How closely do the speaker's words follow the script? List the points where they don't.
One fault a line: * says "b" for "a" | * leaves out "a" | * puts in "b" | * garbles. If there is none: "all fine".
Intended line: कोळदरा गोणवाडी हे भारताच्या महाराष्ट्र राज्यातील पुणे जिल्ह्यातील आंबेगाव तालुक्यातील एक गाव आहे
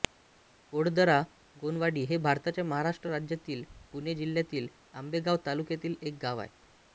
all fine